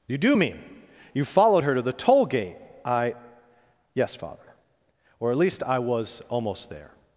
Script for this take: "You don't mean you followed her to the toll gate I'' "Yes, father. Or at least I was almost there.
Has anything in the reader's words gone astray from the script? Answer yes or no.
yes